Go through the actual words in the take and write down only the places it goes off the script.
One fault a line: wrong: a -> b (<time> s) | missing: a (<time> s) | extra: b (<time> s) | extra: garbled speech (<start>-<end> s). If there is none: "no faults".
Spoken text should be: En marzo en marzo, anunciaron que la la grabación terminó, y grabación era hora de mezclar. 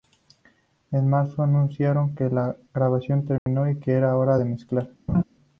missing: en marzo (1.4 s)
missing: la (2.5 s)
wrong: grabación -> que (3.8 s)